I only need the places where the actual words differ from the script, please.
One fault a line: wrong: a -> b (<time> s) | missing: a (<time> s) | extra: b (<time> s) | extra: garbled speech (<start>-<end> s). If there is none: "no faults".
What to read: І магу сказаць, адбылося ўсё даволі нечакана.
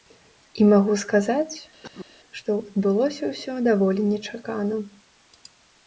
extra: што (2.4 s)